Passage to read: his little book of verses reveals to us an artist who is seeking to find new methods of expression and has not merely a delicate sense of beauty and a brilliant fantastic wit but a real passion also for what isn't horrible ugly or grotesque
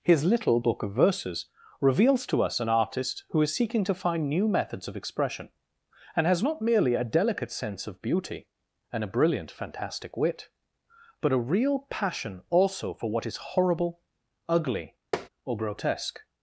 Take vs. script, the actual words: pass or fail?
fail